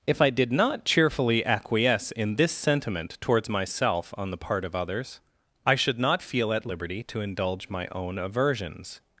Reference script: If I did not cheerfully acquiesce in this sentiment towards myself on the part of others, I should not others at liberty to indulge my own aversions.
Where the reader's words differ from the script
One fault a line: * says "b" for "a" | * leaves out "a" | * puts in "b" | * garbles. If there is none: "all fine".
* says "feel" for "others"